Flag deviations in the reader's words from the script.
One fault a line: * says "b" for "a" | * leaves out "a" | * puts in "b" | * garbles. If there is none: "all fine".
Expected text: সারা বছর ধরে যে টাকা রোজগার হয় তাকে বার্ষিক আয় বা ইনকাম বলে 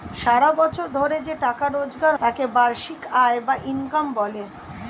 * leaves out "হয়"